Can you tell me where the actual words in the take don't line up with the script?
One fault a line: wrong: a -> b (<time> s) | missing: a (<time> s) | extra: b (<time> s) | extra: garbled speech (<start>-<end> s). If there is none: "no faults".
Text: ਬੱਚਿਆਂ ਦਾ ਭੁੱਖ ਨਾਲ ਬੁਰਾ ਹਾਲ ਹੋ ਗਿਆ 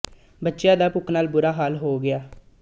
no faults